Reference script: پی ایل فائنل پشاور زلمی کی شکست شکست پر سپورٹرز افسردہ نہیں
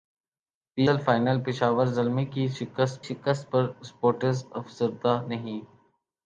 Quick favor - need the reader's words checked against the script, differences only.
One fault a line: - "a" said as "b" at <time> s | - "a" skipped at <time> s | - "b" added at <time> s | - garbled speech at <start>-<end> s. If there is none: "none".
none